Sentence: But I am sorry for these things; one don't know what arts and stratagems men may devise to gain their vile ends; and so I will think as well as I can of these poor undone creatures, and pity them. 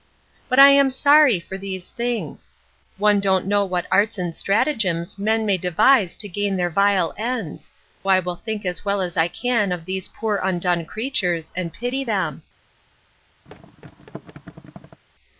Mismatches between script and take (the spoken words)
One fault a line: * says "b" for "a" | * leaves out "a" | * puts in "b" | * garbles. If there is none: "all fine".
* leaves out "and so"